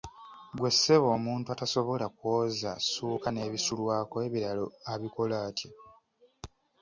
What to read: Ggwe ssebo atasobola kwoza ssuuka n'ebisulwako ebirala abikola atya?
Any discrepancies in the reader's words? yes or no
yes